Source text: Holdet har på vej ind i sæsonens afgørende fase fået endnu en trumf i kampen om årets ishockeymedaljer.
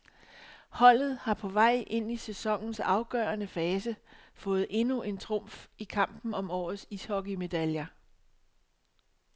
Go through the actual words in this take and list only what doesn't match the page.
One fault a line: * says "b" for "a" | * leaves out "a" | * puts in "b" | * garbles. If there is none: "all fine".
all fine